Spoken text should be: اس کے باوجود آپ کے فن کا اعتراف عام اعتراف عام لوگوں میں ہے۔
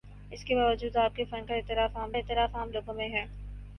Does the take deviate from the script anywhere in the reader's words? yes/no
no